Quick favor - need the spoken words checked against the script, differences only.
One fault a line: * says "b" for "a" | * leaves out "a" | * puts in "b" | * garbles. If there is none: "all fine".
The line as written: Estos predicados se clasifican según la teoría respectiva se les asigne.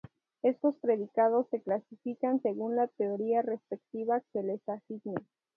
all fine